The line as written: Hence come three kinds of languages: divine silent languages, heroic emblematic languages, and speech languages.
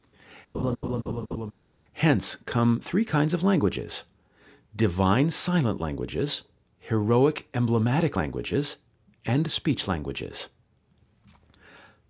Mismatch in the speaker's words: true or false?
false